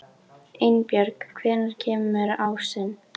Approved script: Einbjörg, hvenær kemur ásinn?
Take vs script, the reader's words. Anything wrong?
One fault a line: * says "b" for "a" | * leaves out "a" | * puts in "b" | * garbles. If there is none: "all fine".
all fine